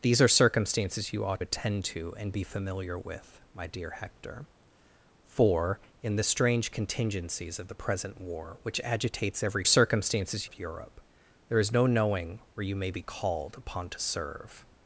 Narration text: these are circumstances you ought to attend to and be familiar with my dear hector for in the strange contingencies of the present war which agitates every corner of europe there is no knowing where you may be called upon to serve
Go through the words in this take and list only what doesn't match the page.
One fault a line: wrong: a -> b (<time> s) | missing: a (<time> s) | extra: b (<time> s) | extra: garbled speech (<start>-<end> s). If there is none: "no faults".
missing: to (1.4 s)
wrong: corner -> circumstances (9.6 s)